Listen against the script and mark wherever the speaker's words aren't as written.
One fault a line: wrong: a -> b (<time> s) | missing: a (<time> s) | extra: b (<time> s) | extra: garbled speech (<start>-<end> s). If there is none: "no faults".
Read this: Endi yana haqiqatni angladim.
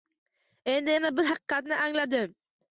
extra: bir (1.2 s)